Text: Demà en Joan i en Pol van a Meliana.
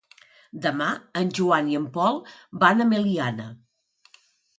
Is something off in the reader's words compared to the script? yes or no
no